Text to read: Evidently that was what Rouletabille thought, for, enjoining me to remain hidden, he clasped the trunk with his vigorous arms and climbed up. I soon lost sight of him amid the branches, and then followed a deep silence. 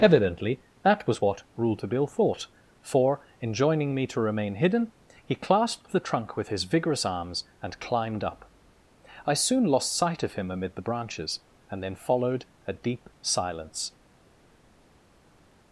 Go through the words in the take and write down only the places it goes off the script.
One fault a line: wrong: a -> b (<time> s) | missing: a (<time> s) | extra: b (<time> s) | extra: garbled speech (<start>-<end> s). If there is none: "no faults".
no faults